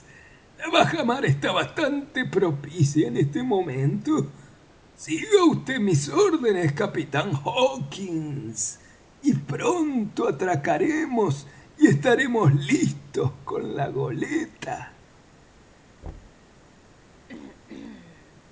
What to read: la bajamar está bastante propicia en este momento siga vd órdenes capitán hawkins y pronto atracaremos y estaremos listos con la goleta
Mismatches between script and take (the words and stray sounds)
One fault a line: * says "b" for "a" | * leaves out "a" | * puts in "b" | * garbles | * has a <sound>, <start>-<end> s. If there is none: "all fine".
* puts in "mis"
* has a thud, 16.0-16.5 s
* has a throat clearing, 17.3-18.4 s